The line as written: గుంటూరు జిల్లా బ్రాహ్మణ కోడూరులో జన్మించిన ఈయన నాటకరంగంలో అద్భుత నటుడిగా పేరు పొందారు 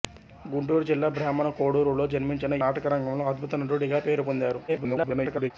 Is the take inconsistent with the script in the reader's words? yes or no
yes